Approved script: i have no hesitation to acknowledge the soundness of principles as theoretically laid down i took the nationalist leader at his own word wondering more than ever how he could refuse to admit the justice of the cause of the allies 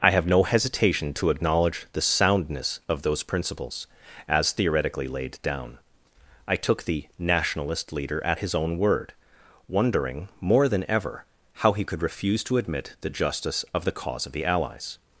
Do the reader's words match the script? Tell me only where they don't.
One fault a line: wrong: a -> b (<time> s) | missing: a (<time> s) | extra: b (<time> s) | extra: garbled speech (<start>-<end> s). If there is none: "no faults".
extra: those (3.0 s)